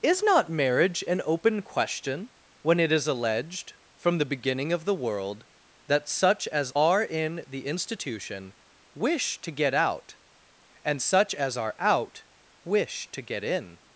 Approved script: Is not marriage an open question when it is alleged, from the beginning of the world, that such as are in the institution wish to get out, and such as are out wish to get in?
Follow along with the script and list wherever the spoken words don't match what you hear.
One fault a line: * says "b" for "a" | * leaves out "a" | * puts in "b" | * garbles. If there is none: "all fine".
all fine